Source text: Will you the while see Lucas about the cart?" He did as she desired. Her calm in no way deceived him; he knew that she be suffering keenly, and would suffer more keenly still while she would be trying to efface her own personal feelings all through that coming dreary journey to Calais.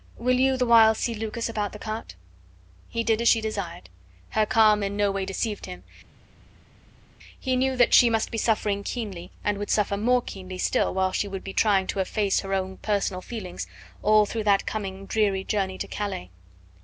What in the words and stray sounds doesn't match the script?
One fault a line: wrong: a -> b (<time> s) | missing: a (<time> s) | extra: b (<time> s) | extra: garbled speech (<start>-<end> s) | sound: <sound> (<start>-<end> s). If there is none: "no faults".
extra: must (8.1 s)